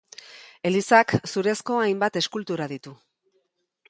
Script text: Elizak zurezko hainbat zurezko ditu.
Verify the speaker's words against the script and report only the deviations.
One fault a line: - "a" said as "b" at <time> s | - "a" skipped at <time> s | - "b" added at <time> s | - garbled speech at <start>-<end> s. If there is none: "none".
- "zurezko" said as "eskultura" at 2.2 s